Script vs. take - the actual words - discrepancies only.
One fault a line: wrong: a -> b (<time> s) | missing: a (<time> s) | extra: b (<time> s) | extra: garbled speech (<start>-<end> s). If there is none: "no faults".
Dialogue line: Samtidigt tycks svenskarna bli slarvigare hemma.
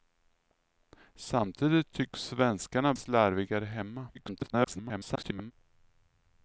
missing: bli (2.9 s)
extra: garbled speech (4.1-5.5 s)